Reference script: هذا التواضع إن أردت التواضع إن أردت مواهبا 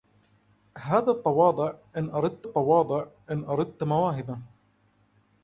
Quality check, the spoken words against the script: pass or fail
pass